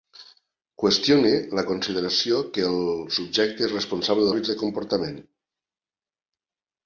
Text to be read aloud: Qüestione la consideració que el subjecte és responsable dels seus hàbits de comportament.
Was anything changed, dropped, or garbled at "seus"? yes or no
yes